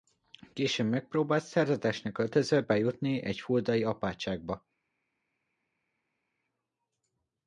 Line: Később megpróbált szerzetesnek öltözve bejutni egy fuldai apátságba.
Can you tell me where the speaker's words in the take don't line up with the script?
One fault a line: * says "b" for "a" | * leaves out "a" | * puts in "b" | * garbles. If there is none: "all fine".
all fine